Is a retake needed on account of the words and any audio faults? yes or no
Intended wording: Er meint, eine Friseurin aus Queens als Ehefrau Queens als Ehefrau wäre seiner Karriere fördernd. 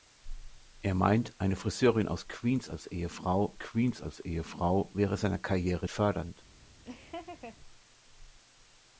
yes